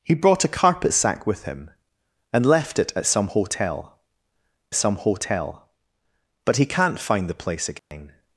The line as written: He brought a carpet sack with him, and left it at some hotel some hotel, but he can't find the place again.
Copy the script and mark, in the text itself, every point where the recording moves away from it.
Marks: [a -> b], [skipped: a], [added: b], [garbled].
He brought a carpet sack with him, and left it at some hotel some hotel, but he can't find the place again.